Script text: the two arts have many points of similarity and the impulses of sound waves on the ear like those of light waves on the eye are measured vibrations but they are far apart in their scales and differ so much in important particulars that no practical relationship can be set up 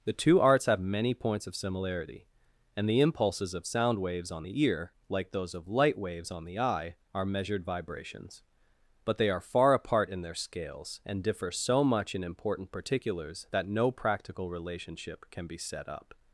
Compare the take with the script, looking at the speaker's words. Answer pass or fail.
pass